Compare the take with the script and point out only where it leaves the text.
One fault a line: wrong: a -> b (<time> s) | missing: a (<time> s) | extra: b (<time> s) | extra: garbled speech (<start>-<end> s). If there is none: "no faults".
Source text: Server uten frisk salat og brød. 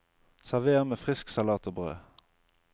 wrong: uten -> med (0.8 s)